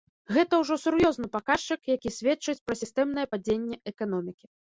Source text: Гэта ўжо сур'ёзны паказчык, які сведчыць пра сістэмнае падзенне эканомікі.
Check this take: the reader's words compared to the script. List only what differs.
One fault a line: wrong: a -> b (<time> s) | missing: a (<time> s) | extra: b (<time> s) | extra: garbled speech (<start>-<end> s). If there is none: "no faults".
no faults